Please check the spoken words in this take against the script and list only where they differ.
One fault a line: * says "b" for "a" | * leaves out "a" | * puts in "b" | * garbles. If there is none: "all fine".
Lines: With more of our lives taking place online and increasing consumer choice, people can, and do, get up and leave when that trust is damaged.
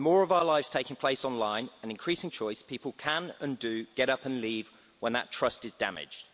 * leaves out "consumer"